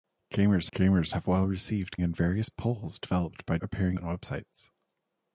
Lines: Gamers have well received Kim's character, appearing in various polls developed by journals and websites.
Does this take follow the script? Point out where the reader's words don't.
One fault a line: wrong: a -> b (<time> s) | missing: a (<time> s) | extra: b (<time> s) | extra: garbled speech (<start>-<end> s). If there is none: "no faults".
extra: gamers (0.7 s)
missing: Kim's character appearing (2.0 s)
wrong: journals -> appearing (3.6 s)